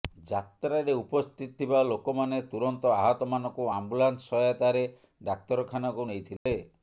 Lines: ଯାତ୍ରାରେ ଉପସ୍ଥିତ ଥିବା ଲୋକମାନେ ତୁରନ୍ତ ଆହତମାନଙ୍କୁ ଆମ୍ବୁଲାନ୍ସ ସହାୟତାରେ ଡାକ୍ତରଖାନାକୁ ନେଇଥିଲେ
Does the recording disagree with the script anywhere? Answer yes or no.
no